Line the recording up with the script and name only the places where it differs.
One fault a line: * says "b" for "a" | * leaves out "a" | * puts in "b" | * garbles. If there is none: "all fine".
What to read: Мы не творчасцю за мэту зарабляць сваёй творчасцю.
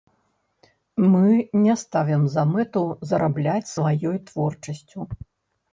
* says "ставім" for "творчасцю"